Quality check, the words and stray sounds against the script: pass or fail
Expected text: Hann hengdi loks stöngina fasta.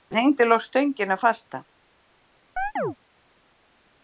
fail